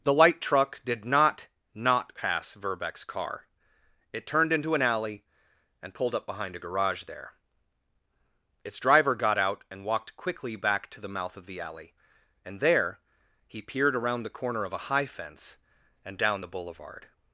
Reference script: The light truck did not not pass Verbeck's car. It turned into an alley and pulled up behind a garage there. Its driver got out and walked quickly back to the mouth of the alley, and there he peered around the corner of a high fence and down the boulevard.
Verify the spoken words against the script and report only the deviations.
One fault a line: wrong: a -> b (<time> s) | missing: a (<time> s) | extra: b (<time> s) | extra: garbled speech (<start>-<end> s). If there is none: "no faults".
no faults